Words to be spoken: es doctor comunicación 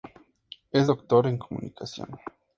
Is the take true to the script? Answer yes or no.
no